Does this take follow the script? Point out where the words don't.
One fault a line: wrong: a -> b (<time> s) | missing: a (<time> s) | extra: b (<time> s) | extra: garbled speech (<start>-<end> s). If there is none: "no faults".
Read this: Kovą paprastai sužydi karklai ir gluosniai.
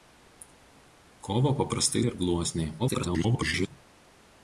missing: sužydi karklai (2.0 s)
extra: garbled speech (2.8-3.7 s)